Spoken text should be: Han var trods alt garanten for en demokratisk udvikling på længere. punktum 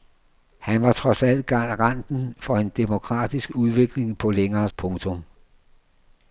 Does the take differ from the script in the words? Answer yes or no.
no